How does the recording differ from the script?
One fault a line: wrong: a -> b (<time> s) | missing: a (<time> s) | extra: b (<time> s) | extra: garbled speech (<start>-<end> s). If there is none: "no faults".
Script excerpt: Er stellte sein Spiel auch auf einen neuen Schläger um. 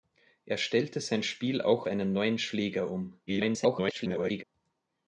missing: auf (1.9 s)
extra: garbled speech (3.3-4.4 s)